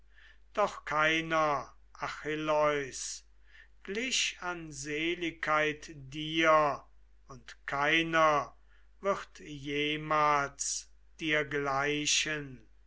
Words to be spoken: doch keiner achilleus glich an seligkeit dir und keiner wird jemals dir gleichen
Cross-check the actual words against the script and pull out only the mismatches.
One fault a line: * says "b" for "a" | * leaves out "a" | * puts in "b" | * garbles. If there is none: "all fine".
all fine